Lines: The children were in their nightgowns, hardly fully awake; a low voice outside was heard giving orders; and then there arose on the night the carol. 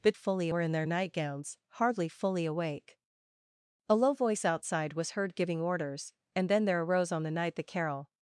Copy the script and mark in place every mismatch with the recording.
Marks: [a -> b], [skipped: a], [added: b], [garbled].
The [children -> fully] were in their nightgowns, hardly fully awake; a low voice outside was heard giving orders; and then there arose on the night the carol.